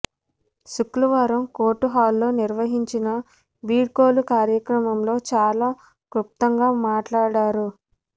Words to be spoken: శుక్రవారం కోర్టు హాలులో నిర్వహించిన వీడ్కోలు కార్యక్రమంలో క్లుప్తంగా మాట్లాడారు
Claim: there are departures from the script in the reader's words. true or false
true